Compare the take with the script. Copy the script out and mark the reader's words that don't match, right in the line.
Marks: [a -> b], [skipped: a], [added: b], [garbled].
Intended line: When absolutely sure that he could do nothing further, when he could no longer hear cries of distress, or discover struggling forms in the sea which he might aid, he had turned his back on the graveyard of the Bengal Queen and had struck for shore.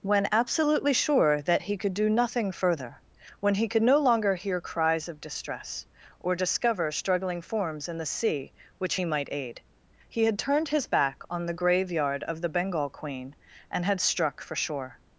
When absolutely sure that he could do nothing further, when he could no longer hear cries of distress, or discover struggling forms in the sea which he might aid, he had turned his back on the graveyard of the Bengal Queen and had struck for shore.